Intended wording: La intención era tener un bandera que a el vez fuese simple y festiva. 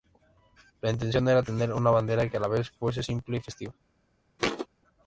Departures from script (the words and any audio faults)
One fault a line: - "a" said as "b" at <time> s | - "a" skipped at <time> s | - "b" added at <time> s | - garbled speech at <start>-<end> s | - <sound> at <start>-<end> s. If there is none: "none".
- "un" said as "una" at 1.7 s
- "el" said as "la" at 2.4 s
- thud at 4.4-4.7 s